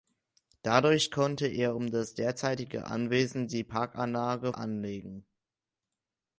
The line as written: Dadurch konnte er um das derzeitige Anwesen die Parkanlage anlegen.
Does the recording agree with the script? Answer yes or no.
yes